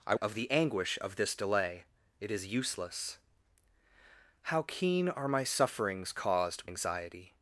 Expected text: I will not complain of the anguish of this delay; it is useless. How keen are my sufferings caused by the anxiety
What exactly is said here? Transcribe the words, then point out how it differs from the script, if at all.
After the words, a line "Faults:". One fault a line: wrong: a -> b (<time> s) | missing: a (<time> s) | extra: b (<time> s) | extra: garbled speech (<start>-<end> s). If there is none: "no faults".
I of the anguish of this delay; it is useless. How keen are my sufferings caused anxiety
Faults:
missing: will not complain (0.1 s)
missing: by the (6.7 s)